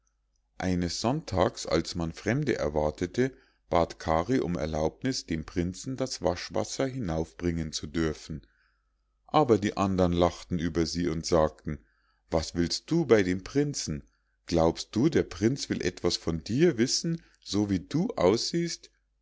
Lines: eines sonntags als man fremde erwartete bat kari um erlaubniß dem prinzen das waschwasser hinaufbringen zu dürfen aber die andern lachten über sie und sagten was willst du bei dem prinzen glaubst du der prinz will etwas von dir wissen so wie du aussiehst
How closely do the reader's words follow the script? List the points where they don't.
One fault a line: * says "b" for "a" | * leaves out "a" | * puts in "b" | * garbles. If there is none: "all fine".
all fine